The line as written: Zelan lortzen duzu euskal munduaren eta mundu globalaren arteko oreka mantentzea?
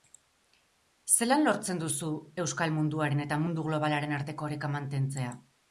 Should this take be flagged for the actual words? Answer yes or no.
no